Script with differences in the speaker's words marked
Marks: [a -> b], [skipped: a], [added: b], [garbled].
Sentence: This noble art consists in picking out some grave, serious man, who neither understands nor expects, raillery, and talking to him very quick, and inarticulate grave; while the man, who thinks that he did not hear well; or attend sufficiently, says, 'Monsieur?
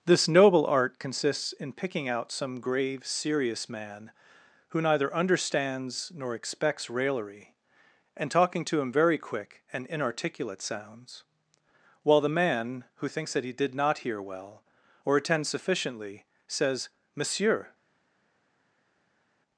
This noble art consists in picking out some grave, serious man, who neither understands nor expects, raillery, and talking to him very quick, and inarticulate [grave; -> sounds] while the man, who thinks that he did not hear well; or attend sufficiently, says, 'Monsieur?